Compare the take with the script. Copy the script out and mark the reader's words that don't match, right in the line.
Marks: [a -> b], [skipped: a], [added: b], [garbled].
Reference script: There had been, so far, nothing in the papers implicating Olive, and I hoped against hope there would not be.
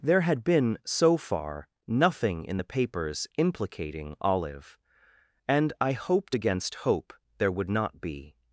There had been, so far, nothing in the papers implicating Olive, and I hoped against hope there would not be.